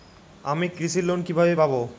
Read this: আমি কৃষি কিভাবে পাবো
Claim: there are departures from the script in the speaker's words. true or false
true